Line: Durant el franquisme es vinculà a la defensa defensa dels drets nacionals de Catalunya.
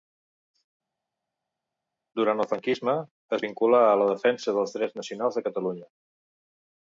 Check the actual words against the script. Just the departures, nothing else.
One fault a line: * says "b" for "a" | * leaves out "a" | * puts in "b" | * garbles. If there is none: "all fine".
* leaves out "defensa"